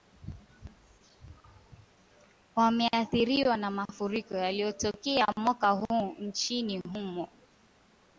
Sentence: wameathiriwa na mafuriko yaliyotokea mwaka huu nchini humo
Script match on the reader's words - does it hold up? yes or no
yes